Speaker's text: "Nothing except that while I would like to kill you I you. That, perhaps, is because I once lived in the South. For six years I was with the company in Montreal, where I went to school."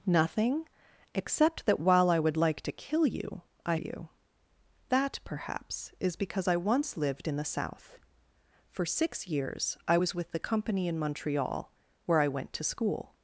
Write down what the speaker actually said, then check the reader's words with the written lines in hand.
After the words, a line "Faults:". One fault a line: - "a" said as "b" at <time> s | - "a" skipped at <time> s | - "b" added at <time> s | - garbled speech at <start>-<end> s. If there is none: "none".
"Nothing except that while I would like to kill you I you. That, perhaps, is because I once lived in the South. For six years I was with the company in Montreal, where I went to school."
Faults:
none